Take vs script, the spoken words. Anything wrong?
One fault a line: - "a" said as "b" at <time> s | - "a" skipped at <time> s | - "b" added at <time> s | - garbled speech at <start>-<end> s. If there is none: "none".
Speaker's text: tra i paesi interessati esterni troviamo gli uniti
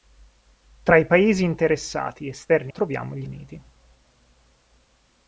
none